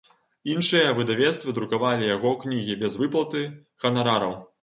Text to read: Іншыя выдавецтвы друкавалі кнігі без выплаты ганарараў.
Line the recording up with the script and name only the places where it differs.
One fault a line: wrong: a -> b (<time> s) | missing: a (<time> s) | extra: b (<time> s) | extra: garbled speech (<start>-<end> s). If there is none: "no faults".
extra: яго (2.1 s)